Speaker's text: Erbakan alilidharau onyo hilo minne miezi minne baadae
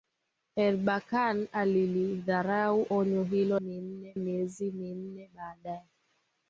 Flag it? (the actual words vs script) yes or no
no